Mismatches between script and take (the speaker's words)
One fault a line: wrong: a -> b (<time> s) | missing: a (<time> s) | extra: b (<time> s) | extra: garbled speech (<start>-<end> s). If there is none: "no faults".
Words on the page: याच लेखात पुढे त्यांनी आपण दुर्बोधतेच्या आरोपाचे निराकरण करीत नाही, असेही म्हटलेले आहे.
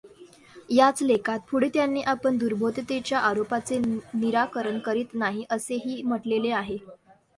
no faults